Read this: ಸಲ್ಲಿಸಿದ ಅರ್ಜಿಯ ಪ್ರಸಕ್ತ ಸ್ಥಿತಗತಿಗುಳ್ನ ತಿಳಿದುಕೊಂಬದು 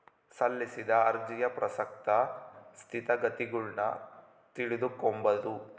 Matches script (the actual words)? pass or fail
pass